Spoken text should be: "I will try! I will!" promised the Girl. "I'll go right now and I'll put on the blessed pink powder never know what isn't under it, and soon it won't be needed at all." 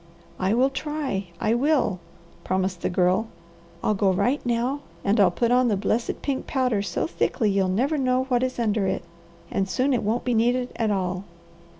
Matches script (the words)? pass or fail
fail